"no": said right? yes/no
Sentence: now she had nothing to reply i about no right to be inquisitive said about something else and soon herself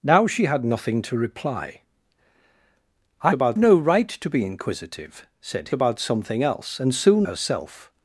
yes